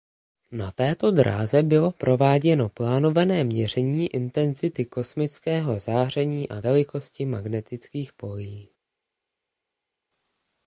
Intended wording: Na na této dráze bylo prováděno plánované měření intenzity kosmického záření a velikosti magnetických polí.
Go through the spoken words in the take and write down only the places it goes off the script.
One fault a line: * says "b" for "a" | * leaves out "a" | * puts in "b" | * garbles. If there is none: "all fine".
* leaves out "na"